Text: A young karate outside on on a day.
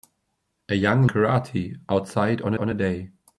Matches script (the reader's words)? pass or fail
pass